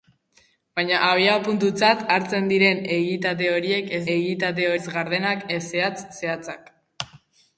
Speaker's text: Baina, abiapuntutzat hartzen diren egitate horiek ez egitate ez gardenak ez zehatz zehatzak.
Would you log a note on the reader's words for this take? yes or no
no